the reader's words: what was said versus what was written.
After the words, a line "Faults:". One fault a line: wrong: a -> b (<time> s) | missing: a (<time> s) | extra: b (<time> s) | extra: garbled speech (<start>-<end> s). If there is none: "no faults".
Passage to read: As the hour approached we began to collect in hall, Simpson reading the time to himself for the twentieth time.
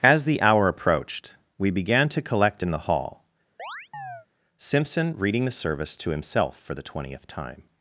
As the hour approached we began to collect in the hall, Simpson reading the service to himself for the twentieth time.
Faults:
extra: the (2.7 s)
wrong: time -> service (5.5 s)